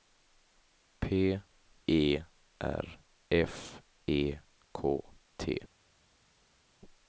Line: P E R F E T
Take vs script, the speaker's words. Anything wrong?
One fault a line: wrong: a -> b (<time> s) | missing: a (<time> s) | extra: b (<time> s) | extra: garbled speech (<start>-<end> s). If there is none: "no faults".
extra: K (4.7 s)